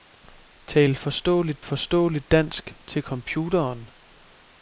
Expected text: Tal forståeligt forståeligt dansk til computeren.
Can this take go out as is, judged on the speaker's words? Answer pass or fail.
pass